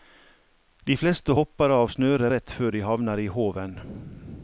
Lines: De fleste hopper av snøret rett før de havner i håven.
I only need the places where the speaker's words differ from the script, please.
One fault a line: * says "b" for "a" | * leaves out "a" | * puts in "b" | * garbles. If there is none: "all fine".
all fine